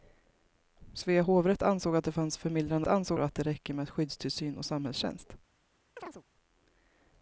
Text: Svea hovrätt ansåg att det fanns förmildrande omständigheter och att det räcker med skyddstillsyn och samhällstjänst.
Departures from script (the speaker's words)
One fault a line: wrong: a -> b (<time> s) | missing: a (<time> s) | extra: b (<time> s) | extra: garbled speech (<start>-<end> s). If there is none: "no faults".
wrong: omständigheter -> ansåg (2.9 s)